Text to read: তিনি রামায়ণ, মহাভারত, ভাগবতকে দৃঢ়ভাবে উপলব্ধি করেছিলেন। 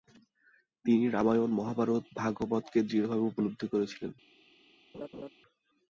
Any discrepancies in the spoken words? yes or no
no